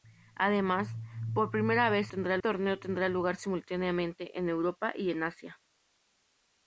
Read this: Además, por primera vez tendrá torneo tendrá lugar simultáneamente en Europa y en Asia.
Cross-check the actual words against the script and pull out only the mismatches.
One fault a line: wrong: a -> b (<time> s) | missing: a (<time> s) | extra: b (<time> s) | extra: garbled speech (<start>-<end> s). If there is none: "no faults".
no faults